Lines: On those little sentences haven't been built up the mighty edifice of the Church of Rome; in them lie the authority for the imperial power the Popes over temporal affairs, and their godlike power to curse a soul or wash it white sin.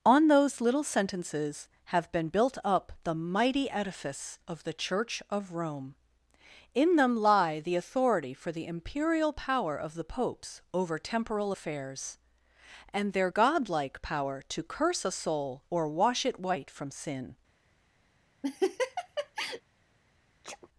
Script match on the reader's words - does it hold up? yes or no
no